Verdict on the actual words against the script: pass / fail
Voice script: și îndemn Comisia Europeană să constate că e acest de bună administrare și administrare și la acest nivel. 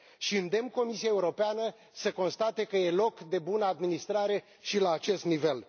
fail